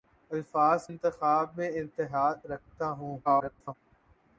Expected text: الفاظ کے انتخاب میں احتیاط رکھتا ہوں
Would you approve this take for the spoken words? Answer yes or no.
no